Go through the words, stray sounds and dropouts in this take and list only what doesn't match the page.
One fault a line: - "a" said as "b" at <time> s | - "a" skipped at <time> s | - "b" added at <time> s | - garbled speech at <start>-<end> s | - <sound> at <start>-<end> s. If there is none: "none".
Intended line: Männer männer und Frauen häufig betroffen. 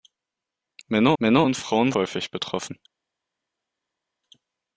none